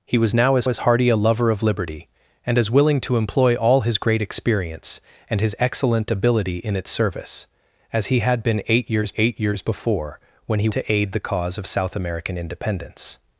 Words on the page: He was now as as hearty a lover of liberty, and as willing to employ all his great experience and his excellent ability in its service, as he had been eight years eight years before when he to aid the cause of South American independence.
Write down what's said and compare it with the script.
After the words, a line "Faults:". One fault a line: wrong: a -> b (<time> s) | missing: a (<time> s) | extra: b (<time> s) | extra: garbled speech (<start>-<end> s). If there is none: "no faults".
He was now as as hearty a lover of liberty, and as willing to employ all his great experience and his excellent ability in its service, as he had been eight years eight years before when he to aid the cause of South American independence.
Faults:
no faults